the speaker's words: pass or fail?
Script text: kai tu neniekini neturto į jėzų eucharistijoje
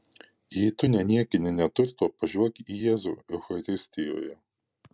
fail